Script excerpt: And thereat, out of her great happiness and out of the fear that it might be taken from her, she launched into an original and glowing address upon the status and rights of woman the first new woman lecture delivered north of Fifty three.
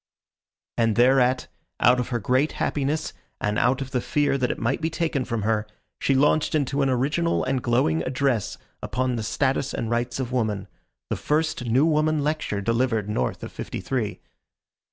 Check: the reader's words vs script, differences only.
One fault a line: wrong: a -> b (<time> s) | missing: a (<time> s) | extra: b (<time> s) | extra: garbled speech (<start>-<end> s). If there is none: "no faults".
no faults